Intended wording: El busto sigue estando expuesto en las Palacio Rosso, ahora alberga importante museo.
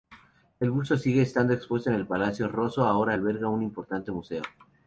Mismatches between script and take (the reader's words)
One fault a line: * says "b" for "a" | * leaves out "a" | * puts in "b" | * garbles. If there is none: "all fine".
* says "el" for "las"
* puts in "un"